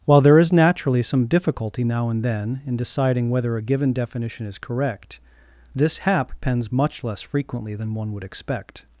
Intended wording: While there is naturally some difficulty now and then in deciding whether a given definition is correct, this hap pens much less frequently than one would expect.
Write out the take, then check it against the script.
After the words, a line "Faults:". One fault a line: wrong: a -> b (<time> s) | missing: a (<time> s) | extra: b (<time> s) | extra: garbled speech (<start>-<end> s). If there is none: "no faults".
While there is naturally some difficulty now and then in deciding whether a given definition is correct, this hap pens much less frequently than one would expect.
Faults:
no faults